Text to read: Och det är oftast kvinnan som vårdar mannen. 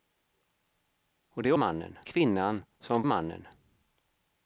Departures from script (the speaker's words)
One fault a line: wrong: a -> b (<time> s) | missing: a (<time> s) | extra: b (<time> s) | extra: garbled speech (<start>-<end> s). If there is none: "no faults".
wrong: oftast -> mannen (1.5 s)
missing: vårdar (3.0 s)